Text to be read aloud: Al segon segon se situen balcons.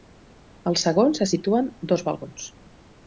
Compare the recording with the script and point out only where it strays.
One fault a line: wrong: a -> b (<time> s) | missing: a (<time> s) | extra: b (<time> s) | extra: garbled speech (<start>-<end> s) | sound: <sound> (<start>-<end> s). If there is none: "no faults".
missing: segon (1.1 s)
extra: dos (1.9 s)